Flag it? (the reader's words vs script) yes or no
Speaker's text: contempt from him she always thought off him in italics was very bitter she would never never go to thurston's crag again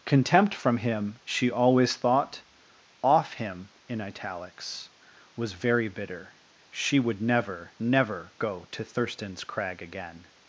no